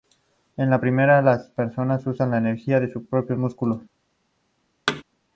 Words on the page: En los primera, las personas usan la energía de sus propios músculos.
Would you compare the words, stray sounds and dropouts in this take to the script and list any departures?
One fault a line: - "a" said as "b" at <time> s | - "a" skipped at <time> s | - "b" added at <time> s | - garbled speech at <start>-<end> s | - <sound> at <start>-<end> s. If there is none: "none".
- "los" said as "la" at 0.7 s
- thud at 4.9-5.0 s